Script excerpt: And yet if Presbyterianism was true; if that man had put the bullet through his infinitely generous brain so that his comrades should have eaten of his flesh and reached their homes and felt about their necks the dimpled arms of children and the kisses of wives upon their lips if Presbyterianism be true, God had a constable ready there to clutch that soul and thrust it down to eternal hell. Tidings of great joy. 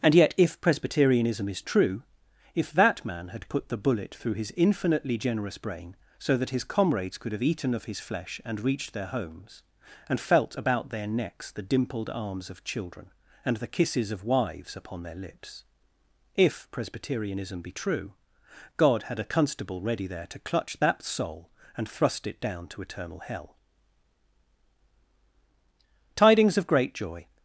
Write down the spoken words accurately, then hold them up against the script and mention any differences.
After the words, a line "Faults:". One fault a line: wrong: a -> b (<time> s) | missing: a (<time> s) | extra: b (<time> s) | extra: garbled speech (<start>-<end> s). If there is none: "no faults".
And yet if Presbyterianism is true; if that man had put the bullet through his infinitely generous brain so that his comrades could have eaten of his flesh and reached their homes and felt about their necks the dimpled arms of children and the kisses of wives upon their lips if Presbyterianism be true, God had a constable ready there to clutch that soul and thrust it down to eternal hell. Tidings of great joy.
Faults:
wrong: was -> is (1.5 s)
wrong: should -> could (7.2 s)